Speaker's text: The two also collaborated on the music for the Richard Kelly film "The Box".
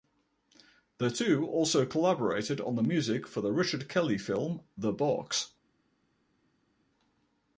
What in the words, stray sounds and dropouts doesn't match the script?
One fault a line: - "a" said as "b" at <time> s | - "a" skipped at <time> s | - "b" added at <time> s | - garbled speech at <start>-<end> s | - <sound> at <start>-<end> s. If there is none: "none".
none